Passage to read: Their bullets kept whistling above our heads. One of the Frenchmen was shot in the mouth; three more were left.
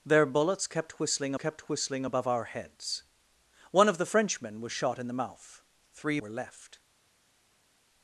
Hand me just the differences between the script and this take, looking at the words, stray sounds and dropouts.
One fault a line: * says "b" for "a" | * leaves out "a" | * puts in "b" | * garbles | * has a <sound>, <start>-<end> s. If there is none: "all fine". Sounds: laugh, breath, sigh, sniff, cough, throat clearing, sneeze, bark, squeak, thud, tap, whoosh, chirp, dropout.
* puts in "kept whistling"
* leaves out "more"